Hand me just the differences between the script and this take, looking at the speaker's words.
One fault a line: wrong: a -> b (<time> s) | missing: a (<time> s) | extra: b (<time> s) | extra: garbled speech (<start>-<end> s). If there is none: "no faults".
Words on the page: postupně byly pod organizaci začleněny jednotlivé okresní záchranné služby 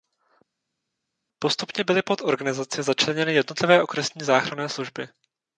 no faults